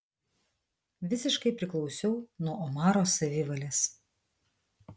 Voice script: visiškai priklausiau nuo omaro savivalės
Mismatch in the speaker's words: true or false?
false